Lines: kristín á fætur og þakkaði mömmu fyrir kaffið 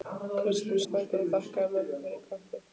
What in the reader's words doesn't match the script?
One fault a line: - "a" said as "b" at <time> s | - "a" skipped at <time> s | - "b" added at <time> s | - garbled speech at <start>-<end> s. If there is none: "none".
none